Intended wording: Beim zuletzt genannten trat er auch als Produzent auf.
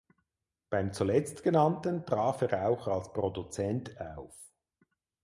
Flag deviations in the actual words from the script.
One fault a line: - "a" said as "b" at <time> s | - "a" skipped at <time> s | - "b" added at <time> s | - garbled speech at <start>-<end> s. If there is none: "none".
none